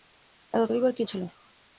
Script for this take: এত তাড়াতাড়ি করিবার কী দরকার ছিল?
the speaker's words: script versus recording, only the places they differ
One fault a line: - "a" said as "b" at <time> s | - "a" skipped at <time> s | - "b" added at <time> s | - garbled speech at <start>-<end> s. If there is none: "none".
- "তাড়াতাড়ি" skipped at 0.6 s
- "দরকার" skipped at 1.0 s